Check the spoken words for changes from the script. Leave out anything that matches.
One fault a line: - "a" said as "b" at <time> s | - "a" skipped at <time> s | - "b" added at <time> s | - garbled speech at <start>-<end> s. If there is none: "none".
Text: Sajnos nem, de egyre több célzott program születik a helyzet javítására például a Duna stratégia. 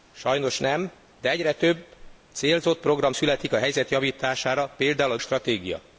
- "Duna" skipped at 5.2 s